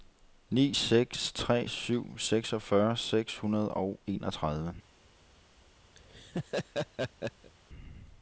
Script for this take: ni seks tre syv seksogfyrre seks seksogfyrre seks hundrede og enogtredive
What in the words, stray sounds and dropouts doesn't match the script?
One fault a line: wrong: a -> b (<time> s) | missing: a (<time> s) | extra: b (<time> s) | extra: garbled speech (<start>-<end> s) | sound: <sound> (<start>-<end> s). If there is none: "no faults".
missing: seksogfyrre seks (3.4 s)
sound: laugh (6.0-7.5 s)